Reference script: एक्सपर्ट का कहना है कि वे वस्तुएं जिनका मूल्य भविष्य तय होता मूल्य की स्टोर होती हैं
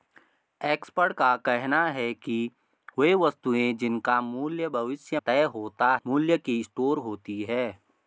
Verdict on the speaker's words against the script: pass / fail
pass